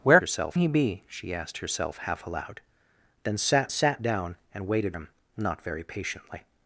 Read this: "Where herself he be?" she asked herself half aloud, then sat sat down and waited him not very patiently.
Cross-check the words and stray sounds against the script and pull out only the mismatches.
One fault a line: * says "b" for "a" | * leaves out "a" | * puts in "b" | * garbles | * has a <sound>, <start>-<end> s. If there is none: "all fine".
all fine